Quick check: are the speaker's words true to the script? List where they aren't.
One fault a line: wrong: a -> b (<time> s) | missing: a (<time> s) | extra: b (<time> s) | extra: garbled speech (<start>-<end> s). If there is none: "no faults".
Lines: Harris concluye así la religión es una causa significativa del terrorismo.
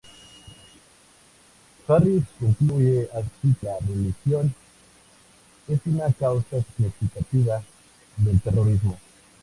no faults